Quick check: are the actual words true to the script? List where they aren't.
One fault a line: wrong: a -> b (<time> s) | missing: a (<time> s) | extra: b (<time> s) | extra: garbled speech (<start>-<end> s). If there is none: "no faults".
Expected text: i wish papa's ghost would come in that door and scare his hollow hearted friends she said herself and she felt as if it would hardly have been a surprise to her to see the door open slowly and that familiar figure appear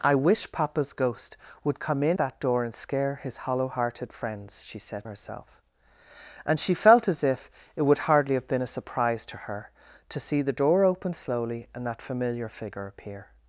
no faults